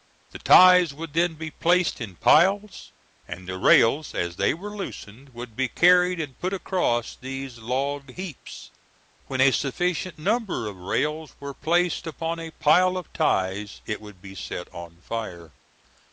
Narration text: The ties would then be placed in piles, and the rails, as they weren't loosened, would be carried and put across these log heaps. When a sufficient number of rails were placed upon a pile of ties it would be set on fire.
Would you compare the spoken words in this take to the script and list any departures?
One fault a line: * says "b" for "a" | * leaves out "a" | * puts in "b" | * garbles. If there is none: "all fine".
* says "were" for "weren't"